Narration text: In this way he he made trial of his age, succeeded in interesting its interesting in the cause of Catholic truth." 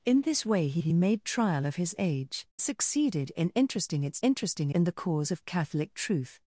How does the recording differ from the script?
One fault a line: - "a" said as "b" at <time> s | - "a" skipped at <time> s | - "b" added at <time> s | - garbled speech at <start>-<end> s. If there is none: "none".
none